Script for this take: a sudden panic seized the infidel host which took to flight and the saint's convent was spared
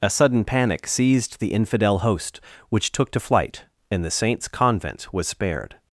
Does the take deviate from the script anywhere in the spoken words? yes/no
no